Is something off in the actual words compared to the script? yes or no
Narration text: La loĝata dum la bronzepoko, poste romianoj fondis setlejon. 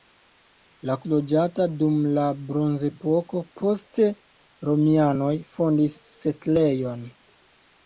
no